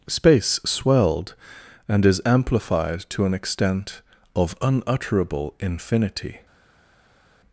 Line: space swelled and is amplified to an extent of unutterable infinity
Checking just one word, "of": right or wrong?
right